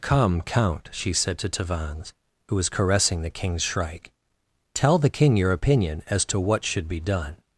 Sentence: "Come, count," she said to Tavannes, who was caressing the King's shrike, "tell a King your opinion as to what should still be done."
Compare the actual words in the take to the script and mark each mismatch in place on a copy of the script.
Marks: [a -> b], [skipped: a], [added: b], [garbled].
"Come, count," she said to Tavannes, who was caressing the King's shrike, "tell [a -> the] King your opinion as to what should [skipped: still] be done."